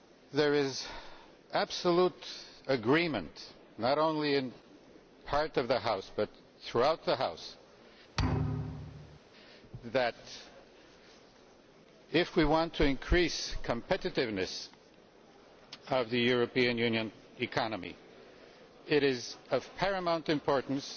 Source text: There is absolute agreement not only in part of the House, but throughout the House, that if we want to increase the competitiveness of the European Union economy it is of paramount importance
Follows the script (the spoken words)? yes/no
yes